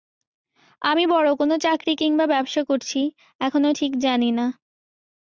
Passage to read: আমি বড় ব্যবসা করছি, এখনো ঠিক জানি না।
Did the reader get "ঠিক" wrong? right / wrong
right